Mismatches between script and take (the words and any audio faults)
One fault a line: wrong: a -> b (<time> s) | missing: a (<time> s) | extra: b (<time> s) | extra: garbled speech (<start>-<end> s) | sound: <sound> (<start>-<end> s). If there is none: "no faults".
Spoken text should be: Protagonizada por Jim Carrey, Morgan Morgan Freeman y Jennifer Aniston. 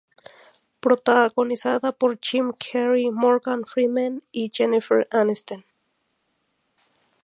missing: Morgan (3.6 s)